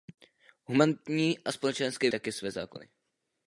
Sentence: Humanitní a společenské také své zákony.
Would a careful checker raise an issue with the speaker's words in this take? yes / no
no